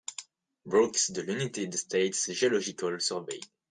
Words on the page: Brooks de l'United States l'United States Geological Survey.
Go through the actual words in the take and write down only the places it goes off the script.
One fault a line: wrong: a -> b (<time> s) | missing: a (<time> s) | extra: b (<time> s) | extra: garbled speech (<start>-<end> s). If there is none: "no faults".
missing: l'United States (2.3 s)